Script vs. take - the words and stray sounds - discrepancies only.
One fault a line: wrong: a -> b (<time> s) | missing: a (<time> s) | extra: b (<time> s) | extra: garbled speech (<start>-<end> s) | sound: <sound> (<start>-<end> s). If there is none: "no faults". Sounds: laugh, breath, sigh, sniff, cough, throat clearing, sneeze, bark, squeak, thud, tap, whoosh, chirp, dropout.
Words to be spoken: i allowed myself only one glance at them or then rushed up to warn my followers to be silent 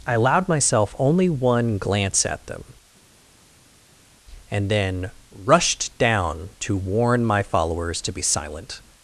wrong: or -> and (4.5 s)
wrong: up -> down (6.0 s)